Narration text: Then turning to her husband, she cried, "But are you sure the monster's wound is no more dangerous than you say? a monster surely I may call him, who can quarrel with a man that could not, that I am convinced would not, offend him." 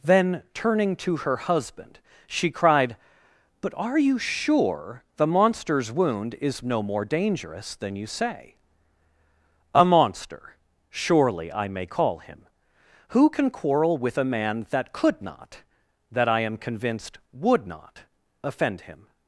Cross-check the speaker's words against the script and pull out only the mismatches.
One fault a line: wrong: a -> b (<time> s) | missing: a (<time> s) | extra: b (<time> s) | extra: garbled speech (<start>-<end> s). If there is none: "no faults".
no faults